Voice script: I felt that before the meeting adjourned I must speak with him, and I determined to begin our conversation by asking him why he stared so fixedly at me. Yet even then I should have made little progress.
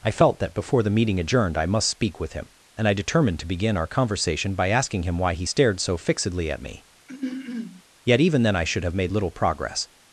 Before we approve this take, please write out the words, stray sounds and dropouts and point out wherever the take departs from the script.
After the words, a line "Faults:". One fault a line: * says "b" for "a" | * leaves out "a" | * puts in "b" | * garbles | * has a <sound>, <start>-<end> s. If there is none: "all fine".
I felt that before the meeting adjourned I must speak with him, and I determined to begin our conversation by asking him why he stared so fixedly at me. Yet even then I should have made little progress.
Faults:
* has a throat clearing, 7.1-7.8 s